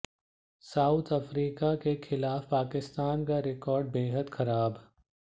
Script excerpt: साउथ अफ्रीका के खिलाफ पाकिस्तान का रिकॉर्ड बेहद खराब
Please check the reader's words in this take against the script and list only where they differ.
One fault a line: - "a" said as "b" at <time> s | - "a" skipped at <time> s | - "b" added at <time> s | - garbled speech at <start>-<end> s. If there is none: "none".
none